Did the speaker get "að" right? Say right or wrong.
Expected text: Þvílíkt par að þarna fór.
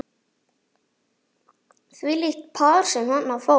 wrong